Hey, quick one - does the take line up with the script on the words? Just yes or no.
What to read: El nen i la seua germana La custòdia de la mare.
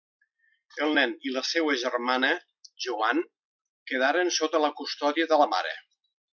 no